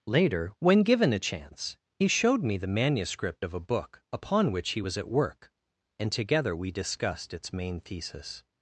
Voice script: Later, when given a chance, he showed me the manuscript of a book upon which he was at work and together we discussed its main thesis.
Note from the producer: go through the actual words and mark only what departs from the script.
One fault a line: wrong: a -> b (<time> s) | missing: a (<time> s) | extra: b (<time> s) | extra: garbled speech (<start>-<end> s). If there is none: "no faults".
no faults